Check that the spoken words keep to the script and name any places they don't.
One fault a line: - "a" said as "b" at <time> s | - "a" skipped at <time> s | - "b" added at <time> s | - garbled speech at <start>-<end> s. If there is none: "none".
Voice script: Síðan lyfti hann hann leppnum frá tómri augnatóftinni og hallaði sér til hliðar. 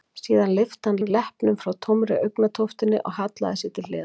none